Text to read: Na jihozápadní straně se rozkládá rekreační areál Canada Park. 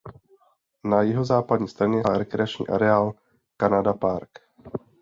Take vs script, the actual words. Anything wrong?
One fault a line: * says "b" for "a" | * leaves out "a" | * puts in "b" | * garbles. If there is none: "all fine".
* leaves out "se rozkládá"